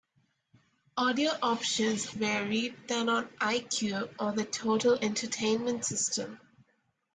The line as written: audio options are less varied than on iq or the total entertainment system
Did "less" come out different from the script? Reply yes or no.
yes